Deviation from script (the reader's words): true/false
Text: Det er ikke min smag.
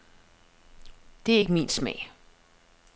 false